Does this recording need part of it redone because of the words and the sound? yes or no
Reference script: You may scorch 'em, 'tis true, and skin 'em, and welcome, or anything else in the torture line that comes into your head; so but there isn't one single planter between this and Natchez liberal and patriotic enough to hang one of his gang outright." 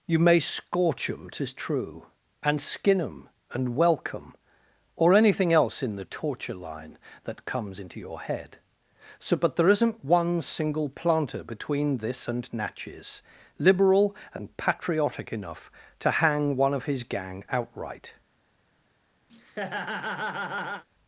yes